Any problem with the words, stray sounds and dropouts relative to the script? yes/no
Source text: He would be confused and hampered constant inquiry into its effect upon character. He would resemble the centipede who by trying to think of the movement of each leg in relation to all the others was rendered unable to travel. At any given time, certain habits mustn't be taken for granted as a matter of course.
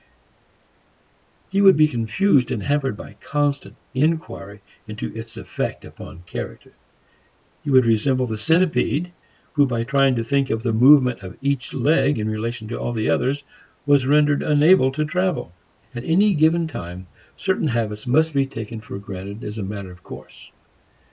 yes